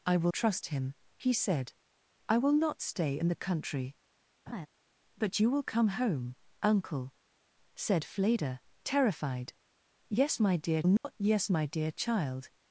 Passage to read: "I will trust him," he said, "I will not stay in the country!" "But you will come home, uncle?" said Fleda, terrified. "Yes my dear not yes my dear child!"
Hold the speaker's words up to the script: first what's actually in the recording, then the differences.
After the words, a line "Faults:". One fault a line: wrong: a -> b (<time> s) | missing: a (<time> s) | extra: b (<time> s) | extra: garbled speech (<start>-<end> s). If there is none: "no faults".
"I will trust him," he said, "I will not stay in the country!" "But you will come home, uncle?" said Fleda, terrified. "Yes my dear not yes my dear child!"
Faults:
no faults